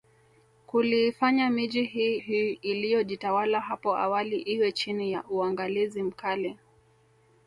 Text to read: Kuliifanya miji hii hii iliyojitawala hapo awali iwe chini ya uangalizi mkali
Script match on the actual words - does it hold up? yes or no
yes